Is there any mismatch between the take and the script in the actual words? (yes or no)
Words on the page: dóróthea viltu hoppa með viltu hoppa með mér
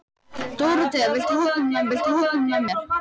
no